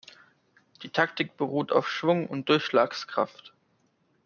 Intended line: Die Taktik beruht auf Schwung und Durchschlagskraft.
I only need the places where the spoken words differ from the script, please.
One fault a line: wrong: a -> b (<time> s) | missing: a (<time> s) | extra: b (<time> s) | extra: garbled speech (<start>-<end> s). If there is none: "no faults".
no faults